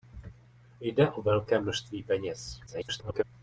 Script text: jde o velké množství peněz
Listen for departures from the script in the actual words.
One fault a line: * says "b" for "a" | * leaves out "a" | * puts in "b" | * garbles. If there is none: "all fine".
* garbles